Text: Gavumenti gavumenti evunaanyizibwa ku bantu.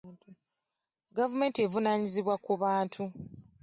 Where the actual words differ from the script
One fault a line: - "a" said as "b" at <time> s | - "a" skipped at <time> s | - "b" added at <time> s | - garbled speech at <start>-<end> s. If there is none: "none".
- "gavumenti" skipped at 1.6 s